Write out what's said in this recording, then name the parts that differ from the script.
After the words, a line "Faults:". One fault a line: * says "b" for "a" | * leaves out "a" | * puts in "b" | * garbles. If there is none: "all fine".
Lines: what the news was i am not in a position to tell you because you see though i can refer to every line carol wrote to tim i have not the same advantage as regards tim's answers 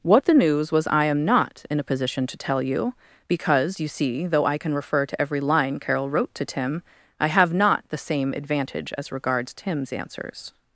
what the news was i am not in a position to tell you because you see though i can refer to every line carol wrote to tim i have not the same advantage as regards tim's answers
Faults:
all fine